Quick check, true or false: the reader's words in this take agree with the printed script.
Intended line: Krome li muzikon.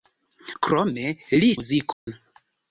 true